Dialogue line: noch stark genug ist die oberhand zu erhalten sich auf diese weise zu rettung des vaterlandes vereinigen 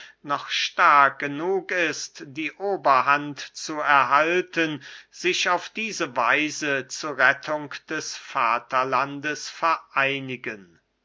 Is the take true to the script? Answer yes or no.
yes